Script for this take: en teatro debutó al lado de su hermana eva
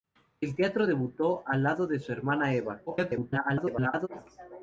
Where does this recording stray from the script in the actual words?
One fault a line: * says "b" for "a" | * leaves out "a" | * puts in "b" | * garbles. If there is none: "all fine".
* garbles